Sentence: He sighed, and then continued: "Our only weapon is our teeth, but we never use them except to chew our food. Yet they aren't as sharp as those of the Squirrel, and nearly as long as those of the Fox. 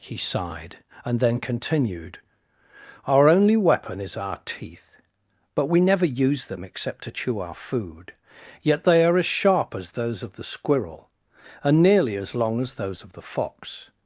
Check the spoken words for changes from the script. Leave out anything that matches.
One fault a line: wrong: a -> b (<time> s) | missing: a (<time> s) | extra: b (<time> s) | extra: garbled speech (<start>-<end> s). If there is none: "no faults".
wrong: aren't -> are (9.1 s)